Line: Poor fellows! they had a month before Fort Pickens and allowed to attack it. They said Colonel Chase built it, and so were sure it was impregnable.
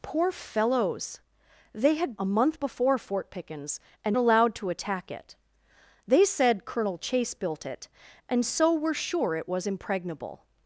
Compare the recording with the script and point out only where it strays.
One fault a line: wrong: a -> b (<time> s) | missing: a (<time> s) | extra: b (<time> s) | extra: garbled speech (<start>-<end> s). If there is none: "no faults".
no faults